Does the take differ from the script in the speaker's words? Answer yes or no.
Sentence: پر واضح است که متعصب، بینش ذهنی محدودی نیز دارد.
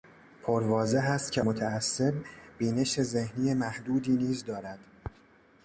no